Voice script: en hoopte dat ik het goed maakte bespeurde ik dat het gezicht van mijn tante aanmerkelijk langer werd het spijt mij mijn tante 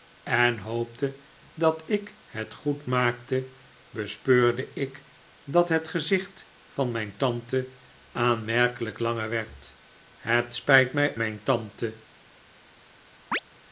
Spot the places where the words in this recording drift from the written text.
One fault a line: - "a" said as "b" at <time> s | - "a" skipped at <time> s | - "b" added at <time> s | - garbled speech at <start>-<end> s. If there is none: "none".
none